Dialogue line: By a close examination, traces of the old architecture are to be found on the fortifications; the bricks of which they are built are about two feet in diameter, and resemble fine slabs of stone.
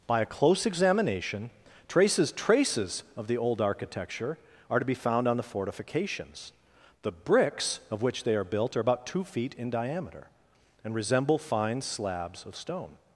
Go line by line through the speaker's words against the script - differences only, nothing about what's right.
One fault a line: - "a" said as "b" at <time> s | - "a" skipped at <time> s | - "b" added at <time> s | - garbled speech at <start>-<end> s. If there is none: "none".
- "traces" added at 2.3 s